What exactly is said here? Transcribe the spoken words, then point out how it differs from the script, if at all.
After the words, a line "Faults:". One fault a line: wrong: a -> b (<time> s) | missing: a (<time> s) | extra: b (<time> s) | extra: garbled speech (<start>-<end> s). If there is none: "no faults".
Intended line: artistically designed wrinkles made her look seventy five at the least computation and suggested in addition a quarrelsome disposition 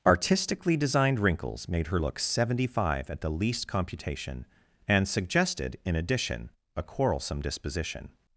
artistically designed wrinkles made her look seventy five at the least computation and suggested in addition a quarrelsome disposition
Faults:
no faults